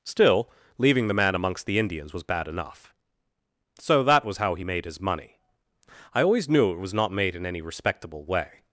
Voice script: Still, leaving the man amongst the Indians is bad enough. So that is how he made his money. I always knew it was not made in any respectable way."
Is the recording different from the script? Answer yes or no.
yes